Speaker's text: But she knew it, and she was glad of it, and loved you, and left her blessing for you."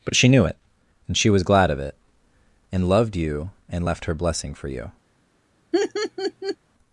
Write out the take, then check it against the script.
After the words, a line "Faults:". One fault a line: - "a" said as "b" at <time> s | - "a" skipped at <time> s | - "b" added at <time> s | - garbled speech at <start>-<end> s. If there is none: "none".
But she knew it, and she was glad of it, and loved you, and left her blessing for you."
Faults:
none